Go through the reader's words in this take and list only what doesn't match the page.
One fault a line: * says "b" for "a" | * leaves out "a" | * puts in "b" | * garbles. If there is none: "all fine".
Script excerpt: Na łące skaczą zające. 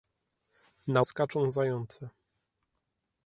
* leaves out "łące"